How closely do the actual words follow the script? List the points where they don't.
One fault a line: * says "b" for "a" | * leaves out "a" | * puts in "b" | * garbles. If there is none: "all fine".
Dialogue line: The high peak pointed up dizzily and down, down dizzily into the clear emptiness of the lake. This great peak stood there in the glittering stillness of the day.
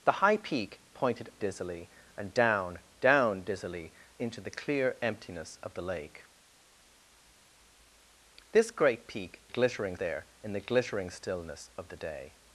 * leaves out "up"
* says "glittering" for "stood"